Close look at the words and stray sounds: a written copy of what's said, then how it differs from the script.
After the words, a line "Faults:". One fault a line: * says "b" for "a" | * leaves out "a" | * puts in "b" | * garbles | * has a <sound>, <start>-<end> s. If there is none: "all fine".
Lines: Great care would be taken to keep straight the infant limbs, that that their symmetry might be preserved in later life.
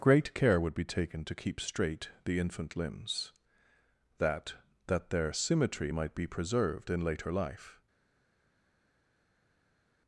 Great care would be taken to keep straight the infant limbs, that that their symmetry might be preserved in later life.
Faults:
all fine